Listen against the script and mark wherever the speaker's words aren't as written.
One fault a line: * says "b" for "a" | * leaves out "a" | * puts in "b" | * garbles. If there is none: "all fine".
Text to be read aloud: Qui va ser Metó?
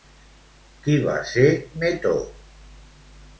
all fine